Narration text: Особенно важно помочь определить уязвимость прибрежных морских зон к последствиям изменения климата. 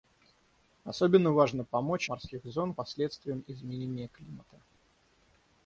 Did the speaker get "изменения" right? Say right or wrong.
right